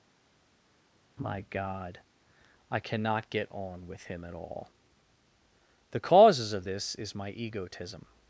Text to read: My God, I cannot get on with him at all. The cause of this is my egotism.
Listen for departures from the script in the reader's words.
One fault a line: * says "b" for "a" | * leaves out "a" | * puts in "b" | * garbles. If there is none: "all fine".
* says "causes" for "cause"